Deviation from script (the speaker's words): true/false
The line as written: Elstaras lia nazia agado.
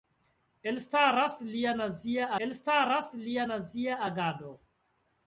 true